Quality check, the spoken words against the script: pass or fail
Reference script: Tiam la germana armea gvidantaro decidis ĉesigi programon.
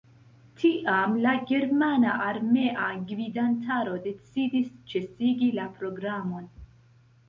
fail